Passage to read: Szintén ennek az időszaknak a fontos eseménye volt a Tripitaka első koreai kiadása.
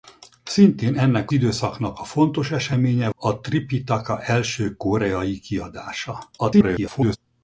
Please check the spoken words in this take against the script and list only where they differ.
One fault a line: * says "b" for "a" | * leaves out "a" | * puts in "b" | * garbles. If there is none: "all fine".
* leaves out "az"
* leaves out "volt"
* garbles